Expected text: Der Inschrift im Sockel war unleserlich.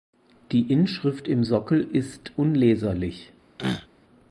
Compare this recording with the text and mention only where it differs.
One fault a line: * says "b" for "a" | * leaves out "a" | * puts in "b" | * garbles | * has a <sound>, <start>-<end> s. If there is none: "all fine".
* says "Die" for "Der"
* says "ist" for "war"
* has a throat clearing, 3.6-3.9 s